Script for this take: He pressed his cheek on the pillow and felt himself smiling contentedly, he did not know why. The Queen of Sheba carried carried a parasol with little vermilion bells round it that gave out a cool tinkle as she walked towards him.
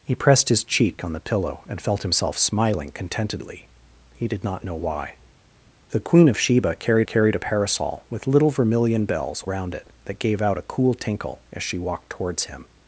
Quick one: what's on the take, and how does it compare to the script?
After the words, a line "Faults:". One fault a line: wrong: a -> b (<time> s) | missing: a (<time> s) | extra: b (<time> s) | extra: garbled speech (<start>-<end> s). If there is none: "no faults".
He pressed his cheek on the pillow and felt himself smiling contentedly, he did not know why. The Queen of Sheba carried carried a parasol with little vermilion bells round it that gave out a cool tinkle as she walked towards him.
Faults:
no faults